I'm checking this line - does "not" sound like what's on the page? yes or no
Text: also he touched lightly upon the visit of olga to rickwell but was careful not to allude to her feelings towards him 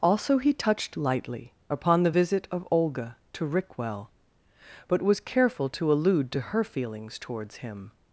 no